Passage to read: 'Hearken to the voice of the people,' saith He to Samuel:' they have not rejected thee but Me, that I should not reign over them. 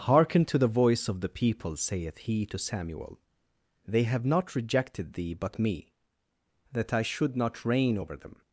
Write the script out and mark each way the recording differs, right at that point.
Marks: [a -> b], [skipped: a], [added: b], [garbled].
'Hearken to the voice of the people,' saith He to Samuel:' they have not rejected thee but Me, that I should not reign over them.